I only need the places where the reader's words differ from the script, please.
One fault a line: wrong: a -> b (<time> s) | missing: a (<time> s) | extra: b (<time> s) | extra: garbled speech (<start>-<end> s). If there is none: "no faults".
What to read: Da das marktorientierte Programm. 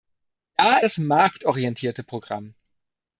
no faults